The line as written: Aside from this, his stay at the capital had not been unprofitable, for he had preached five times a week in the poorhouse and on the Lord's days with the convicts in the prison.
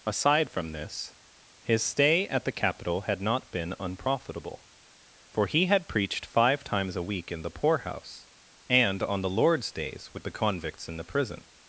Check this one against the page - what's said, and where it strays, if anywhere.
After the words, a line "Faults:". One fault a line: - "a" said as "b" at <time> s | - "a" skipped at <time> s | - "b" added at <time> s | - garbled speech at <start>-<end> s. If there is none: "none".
Aside from this, his stay at the capital had not been unprofitable, for he had preached five times a week in the poorhouse and on the Lord's days with the convicts in the prison.
Faults:
none